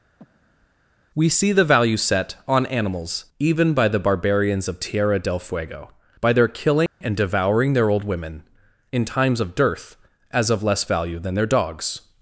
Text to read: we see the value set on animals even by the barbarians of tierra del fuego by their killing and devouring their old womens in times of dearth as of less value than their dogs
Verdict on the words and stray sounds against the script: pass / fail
fail